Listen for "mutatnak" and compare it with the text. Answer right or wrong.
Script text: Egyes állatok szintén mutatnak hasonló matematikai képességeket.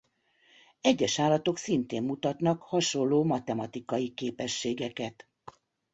right